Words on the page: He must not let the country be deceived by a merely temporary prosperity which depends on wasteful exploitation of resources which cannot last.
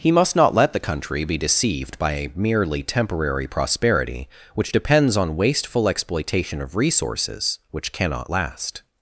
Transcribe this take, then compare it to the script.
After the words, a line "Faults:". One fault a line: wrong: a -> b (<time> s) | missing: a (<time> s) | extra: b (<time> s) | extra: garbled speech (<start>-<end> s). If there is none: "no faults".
He must not let the country be deceived by a merely temporary prosperity which depends on wasteful exploitation of resources which cannot last.
Faults:
no faults